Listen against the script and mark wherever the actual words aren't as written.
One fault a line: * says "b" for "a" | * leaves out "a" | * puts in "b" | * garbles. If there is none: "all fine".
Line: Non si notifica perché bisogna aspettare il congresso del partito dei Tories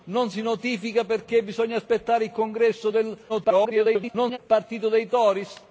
* garbles